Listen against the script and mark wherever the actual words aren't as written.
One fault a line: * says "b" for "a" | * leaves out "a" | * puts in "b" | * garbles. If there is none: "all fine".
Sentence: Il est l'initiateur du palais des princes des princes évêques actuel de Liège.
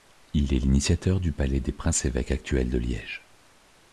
* leaves out "des princes"